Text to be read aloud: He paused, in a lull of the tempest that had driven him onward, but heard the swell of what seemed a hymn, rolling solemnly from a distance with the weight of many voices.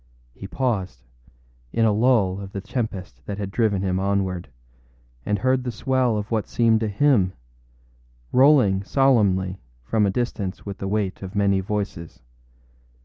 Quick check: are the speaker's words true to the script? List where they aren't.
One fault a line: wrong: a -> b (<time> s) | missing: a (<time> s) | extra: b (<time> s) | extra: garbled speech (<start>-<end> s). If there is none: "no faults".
wrong: but -> and (5.3 s)